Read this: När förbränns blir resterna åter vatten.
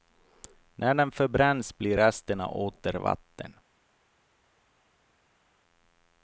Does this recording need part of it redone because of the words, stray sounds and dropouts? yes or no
yes